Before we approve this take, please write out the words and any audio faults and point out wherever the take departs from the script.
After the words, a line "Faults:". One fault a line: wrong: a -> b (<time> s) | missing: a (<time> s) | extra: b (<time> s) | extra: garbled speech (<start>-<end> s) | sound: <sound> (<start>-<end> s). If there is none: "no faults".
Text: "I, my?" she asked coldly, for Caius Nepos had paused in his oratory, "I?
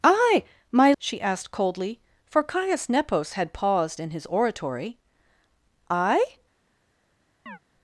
"I, my?" she asked coldly, for Caius Nepos had paused in his oratory, "I?
Faults:
sound: chirp (7.5-7.6 s)